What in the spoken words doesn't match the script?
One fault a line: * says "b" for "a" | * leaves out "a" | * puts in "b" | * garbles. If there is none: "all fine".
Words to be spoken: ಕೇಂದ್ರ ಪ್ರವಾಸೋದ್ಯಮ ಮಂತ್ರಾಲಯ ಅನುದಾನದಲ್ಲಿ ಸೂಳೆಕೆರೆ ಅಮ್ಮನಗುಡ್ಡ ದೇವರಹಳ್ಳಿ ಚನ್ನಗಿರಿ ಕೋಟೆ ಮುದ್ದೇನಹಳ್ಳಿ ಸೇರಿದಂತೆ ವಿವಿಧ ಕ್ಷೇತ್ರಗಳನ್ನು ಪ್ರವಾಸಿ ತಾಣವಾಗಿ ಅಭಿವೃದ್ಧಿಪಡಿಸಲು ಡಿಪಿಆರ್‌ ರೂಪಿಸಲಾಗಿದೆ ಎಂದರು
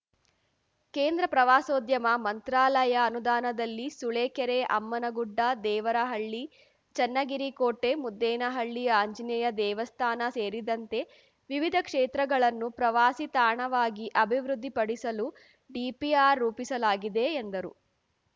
* puts in "ಆಂಜನೇಯ ದೇವಸ್ಥಾನ"